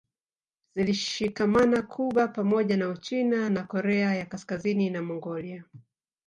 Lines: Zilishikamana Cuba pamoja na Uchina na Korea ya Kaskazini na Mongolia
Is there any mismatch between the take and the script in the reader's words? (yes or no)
no